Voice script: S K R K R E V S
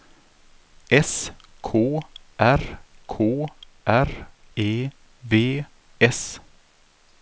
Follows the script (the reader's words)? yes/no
yes